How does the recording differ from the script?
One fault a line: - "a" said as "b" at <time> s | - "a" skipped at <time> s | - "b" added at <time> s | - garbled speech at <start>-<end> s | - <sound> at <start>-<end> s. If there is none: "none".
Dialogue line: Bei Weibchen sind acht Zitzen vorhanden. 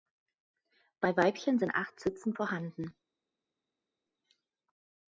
none